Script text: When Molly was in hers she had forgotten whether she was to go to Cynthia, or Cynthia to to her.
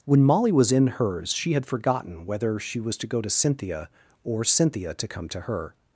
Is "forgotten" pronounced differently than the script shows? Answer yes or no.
no